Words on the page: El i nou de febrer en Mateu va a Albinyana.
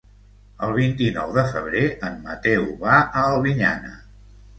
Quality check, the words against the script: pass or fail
fail